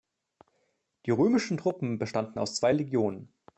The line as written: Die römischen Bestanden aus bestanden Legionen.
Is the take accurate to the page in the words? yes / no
no